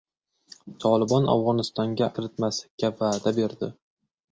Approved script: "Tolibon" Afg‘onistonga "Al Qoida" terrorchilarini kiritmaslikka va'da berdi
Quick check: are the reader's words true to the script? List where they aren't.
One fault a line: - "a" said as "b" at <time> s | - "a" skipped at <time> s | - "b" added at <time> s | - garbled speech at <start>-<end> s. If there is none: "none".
- "Al Qoida terrorchilarini" skipped at 2.1 s